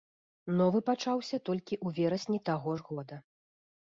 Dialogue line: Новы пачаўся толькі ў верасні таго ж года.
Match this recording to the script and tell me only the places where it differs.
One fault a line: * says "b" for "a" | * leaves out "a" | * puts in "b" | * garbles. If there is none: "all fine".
all fine